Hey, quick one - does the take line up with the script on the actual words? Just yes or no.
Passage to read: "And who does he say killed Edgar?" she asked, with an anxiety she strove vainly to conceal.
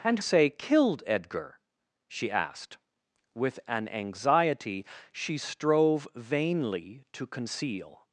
no